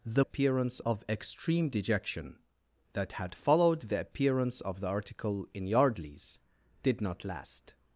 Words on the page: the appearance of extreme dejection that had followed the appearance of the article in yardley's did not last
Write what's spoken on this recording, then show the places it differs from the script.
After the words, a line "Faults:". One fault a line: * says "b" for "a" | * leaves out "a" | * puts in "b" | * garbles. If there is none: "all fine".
the appearance of extreme dejection that had followed the appearance of the article in yardley's did not last
Faults:
all fine